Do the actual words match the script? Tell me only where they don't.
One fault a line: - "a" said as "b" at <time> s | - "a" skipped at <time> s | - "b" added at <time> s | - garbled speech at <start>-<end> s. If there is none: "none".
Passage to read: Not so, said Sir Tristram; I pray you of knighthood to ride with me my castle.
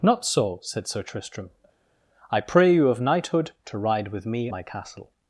none